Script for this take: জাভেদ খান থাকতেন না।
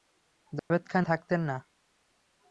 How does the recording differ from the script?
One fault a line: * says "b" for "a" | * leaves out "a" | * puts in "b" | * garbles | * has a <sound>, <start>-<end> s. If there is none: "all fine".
* has a dropout, 0.6-0.7 s